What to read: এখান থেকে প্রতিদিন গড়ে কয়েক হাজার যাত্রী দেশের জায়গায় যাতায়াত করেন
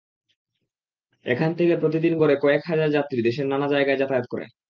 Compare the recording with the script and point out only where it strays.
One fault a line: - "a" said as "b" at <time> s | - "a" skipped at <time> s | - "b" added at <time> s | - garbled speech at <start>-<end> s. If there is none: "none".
- "নানা" added at 3.5 s